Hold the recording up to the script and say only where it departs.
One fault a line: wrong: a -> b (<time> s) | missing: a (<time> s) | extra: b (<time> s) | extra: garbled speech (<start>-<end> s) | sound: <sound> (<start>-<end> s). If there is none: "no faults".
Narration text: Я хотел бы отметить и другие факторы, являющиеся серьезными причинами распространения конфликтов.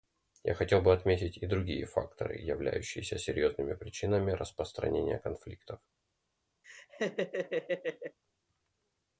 sound: laugh (6.6-8.2 s)